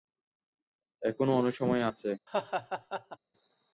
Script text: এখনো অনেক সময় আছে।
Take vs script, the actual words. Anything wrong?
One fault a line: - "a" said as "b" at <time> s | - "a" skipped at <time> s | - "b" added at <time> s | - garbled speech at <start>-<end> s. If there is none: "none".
none